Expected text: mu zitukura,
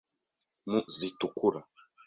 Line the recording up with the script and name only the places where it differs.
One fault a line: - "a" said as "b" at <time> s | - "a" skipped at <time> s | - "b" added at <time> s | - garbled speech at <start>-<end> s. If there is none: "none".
none